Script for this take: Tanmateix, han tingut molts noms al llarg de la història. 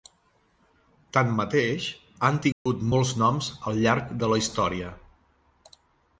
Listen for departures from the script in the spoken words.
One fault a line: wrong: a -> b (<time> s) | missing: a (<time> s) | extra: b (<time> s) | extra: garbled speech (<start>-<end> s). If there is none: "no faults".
no faults